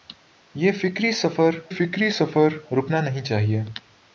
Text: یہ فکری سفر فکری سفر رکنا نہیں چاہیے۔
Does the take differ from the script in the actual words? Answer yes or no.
no